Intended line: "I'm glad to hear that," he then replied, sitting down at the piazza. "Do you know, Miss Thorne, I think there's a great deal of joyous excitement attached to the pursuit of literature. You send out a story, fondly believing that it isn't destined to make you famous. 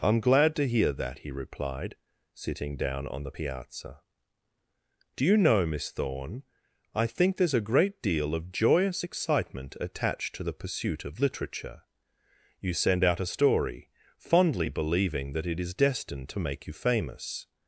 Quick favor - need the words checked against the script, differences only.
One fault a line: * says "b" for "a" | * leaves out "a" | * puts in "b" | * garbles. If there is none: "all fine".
* leaves out "then"
* says "on" for "at"
* says "is" for "isn't"